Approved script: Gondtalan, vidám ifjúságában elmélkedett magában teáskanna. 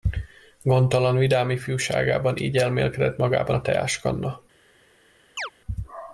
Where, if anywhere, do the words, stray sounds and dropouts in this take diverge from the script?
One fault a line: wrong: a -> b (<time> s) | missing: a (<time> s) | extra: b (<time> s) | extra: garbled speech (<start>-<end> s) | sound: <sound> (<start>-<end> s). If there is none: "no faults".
extra: így (2.4 s)
extra: a (3.5 s)
sound: chirp (5.4-5.5 s)